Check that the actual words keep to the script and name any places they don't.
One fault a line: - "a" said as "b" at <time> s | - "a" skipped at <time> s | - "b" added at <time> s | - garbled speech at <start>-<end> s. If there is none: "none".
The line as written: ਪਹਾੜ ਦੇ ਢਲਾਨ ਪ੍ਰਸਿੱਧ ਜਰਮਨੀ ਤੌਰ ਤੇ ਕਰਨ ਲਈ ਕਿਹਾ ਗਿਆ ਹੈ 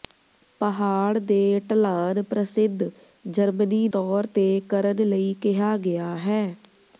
none